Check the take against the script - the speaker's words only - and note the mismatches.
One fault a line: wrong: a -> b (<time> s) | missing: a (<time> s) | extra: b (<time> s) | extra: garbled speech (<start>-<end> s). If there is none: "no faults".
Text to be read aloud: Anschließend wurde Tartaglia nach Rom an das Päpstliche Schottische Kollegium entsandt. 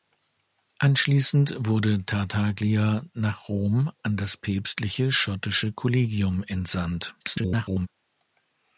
extra: garbled speech (7.2-7.9 s)